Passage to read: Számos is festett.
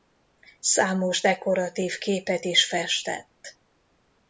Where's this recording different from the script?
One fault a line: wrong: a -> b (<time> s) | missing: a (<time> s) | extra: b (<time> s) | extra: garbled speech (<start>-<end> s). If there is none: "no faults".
extra: dekoratív képet (1.2 s)